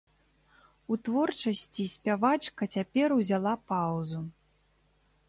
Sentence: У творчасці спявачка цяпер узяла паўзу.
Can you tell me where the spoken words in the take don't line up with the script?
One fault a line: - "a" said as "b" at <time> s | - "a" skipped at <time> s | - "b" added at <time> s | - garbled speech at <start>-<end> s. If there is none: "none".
none